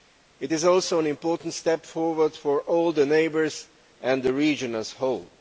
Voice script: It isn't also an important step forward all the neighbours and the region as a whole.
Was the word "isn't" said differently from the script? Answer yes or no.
yes